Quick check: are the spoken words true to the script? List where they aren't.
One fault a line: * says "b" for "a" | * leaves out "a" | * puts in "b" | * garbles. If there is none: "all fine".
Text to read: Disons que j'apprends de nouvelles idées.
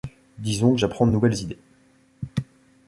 all fine